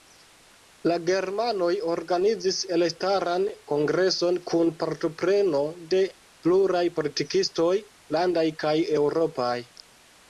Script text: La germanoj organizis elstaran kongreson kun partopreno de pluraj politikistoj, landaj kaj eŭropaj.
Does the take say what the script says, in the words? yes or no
yes